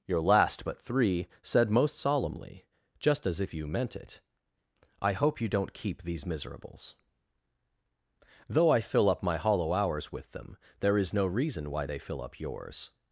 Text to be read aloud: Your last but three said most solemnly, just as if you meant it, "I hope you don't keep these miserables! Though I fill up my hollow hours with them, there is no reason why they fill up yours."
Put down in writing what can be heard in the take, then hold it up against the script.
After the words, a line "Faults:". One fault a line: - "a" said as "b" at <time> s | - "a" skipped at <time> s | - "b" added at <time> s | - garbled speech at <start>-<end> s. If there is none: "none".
Your last but three said most solemnly, just as if you meant it, "I hope you don't keep these miserables! Though I fill up my hollow hours with them, there is no reason why they fill up yours."
Faults:
none